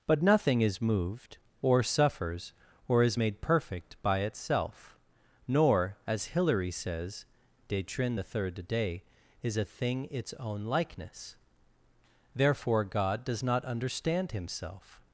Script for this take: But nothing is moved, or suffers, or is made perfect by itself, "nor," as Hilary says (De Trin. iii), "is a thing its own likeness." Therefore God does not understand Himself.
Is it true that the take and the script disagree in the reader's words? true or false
true